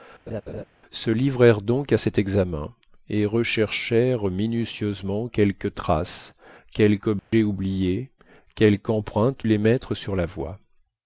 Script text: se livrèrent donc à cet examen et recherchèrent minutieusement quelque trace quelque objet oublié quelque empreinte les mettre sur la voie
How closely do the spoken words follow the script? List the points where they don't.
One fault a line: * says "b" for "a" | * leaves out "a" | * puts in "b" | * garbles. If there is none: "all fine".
all fine